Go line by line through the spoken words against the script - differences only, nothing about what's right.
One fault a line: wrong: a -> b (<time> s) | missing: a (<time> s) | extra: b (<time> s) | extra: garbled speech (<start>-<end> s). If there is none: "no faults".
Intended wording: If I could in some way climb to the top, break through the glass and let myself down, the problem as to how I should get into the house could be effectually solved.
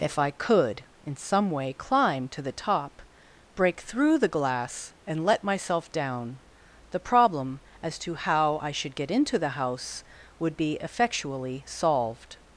wrong: could -> would (10.4 s)